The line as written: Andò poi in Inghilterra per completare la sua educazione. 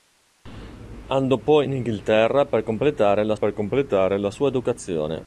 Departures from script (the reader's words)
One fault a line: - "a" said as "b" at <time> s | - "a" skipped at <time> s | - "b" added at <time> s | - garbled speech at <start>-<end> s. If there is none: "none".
- "per completare la" added at 3.3 s